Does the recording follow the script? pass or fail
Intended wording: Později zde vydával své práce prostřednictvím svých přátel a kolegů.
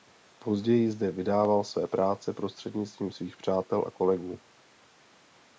pass